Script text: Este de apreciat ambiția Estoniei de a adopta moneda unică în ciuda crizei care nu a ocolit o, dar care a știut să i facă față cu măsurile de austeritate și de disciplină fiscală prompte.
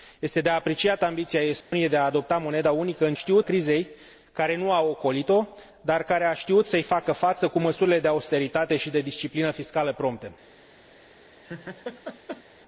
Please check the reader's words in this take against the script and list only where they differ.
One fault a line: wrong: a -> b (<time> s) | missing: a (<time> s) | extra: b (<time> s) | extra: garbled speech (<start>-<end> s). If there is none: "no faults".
wrong: ciuda -> știut (3.1 s)